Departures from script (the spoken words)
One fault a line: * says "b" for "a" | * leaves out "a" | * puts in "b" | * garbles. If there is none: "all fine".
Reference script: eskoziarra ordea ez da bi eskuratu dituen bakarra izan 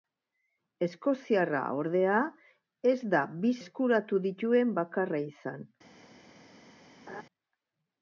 all fine